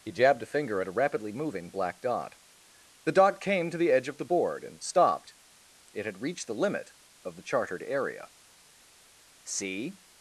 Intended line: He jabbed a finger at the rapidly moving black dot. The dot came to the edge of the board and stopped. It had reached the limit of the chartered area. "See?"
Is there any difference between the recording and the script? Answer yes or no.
yes